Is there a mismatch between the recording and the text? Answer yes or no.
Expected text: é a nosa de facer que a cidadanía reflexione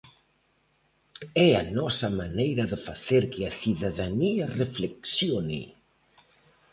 yes